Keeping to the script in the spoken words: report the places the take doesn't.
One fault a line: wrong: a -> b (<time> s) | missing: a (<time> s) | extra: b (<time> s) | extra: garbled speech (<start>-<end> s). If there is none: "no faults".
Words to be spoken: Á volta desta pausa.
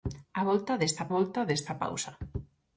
extra: volta desta (1.1 s)